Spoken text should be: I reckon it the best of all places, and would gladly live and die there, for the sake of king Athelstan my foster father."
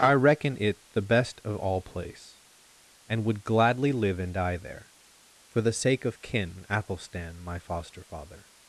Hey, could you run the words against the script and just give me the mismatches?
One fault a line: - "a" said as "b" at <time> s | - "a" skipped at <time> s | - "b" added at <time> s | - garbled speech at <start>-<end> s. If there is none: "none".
- "places" said as "place" at 1.8 s
- "king" said as "kin" at 6.2 s